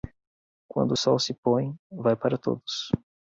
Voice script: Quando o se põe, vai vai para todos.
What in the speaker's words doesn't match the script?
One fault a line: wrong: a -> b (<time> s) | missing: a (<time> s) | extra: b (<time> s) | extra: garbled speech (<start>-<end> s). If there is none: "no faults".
extra: sol (0.9 s)
missing: vai (2.2 s)